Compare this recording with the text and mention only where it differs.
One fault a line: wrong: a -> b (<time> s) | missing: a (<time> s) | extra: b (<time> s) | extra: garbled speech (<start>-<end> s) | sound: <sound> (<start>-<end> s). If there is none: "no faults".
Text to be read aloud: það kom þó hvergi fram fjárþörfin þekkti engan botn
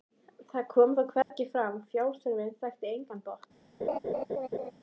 sound: dropout (1.2-1.3 s)
sound: laugh (3.8-4.7 s)